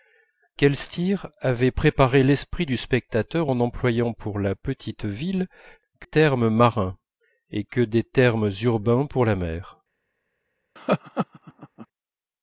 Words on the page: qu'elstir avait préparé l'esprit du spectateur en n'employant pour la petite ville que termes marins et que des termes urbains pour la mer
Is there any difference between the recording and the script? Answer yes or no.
no